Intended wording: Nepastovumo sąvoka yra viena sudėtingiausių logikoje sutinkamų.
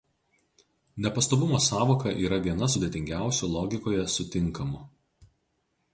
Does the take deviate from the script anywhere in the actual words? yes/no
no